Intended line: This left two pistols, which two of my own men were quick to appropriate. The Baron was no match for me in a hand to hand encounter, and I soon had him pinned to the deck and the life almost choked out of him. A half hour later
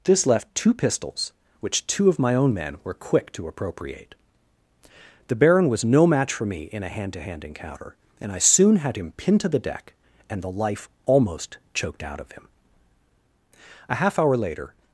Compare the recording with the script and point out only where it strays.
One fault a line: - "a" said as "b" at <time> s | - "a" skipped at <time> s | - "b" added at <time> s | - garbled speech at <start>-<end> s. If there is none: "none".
none